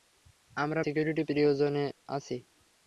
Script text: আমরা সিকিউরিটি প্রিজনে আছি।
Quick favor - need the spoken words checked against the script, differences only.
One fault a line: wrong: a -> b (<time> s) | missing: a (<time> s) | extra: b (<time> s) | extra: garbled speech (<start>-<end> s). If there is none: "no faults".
no faults